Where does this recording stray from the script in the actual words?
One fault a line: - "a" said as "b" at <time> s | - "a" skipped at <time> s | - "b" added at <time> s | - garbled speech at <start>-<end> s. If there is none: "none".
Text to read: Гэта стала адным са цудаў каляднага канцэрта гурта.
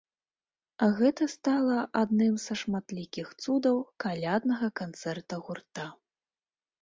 - "шматлікіх" added at 2.6 s